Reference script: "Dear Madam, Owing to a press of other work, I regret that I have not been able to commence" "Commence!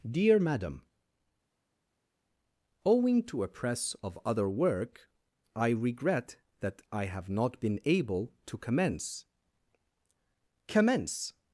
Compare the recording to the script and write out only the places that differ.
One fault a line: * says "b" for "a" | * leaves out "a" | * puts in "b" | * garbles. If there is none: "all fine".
all fine